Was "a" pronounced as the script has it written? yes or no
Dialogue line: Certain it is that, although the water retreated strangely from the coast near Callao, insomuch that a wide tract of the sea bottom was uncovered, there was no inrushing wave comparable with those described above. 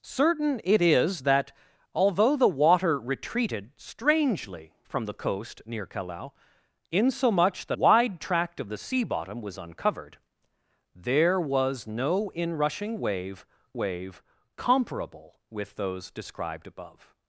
no